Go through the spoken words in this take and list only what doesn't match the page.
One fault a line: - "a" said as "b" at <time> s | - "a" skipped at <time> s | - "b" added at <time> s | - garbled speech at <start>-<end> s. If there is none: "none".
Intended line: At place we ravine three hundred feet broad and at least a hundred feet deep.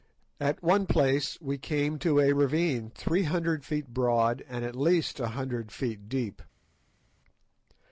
- "one" added at 0.6 s
- "came to a" added at 1.6 s